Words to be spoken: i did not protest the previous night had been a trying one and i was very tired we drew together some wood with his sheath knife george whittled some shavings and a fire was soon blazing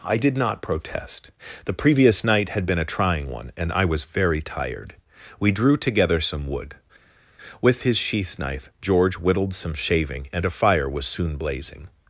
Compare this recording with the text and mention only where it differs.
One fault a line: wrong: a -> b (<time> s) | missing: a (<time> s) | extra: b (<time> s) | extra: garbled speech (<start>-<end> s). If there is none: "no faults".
wrong: shavings -> shaving (9.7 s)